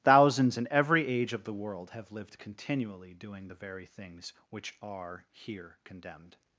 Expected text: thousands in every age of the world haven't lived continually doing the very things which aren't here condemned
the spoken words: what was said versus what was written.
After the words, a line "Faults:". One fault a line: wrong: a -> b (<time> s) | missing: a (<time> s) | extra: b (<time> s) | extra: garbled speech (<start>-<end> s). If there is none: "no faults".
thousands in every age of the world have lived continually doing the very things which are here condemned
Faults:
wrong: haven't -> have (1.9 s)
wrong: aren't -> are (4.8 s)